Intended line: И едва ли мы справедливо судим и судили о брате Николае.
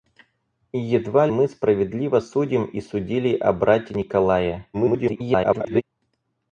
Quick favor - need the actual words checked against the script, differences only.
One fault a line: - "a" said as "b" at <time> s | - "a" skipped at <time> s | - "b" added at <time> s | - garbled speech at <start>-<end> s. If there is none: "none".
- "ли" skipped at 1.3 s
- garbled speech at 4.7-5.8 s